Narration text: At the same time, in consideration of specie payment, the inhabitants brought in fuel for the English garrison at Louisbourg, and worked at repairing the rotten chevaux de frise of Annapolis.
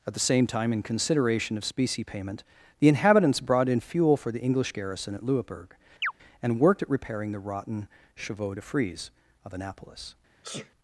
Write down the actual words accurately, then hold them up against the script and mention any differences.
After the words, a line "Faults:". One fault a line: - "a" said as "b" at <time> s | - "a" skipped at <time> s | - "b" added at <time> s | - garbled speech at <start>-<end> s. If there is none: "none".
At the same time, in consideration of specie payment, the inhabitants brought in fuel for the English garrison at Louisbourg, and worked at repairing the rotten chevaux de frise of Annapolis.
Faults:
none